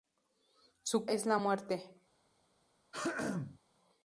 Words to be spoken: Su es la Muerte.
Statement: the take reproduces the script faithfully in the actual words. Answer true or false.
true